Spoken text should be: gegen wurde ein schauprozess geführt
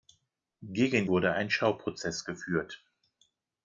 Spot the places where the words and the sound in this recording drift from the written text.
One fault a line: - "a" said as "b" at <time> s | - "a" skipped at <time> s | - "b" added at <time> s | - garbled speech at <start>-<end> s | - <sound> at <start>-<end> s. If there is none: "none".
none